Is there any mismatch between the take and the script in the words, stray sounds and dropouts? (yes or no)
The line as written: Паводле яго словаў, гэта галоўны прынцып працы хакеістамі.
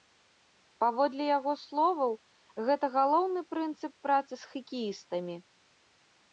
yes